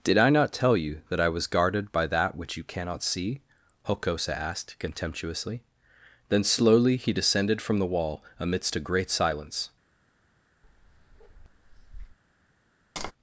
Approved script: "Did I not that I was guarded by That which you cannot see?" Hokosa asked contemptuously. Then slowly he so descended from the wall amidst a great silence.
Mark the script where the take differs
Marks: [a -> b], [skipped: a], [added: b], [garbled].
"Did I not [added: tell you] that I was guarded by That which you cannot see?" Hokosa asked contemptuously. Then slowly he [skipped: so] descended from the wall amidst a great silence.